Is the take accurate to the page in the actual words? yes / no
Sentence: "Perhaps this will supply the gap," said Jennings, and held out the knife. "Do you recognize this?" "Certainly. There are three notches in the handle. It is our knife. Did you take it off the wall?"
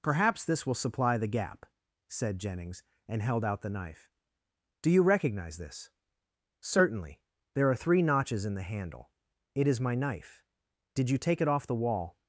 no